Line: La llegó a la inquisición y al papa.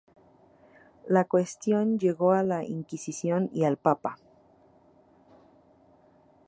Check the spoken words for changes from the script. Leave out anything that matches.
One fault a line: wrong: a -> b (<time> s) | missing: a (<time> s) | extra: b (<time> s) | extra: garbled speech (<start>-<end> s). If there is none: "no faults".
extra: cuestión (1.2 s)